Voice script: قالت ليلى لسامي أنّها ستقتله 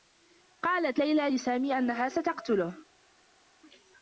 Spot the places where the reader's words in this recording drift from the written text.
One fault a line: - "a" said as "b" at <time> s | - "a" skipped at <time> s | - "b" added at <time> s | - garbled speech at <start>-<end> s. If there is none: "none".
none